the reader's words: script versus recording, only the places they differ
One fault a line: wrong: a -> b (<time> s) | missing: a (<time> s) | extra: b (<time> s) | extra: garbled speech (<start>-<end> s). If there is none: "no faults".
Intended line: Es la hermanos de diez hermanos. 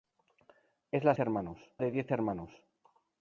no faults